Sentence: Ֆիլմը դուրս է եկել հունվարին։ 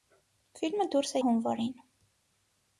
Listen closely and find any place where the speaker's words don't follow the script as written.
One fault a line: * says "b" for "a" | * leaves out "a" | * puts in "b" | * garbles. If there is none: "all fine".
* leaves out "եկել"